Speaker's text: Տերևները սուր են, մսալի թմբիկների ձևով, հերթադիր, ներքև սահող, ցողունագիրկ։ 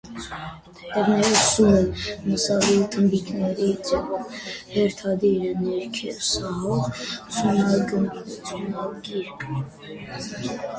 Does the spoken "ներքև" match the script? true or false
true